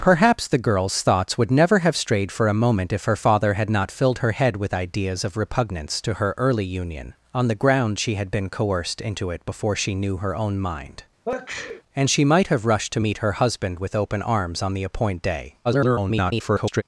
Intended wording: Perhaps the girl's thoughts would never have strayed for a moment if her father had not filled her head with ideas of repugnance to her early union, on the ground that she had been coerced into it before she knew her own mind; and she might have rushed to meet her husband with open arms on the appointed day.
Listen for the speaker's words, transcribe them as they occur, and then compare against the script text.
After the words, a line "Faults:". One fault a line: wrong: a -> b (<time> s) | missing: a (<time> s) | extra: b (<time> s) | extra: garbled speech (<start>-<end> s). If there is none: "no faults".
Perhaps the girl's thoughts would never have strayed for a moment if her father had not filled her head with ideas of repugnance to her early union, on the ground she had been coerced into it before she knew her own mind; and she might have rushed to meet her husband with open arms on the appointed day. [garbled]
Faults:
missing: that (8.0 s)
extra: garbled speech (15.6-16.8 s)